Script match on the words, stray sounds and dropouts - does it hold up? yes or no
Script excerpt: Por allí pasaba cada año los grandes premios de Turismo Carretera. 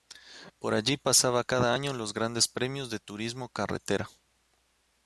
yes